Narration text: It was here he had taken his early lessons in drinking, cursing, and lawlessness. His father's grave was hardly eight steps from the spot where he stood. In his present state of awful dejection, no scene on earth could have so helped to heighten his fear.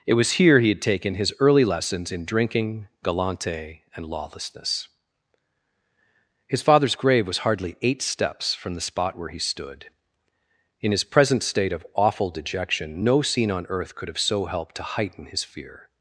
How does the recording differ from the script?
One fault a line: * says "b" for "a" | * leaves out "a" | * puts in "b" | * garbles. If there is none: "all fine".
* says "galante" for "cursing"